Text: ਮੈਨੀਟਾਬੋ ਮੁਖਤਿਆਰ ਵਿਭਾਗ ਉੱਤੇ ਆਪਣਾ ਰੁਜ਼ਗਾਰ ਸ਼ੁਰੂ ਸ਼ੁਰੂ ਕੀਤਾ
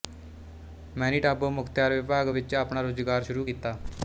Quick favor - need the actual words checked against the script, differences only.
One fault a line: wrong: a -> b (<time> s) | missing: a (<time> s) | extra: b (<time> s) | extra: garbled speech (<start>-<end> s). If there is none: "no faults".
wrong: ਉੱਤੇ -> ਵਿੱਚ (2.3 s)
missing: ਸ਼ੁਰੂ (3.4 s)